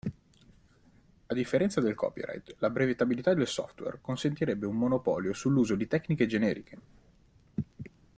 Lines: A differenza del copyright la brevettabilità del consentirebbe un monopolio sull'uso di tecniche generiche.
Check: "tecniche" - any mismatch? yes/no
no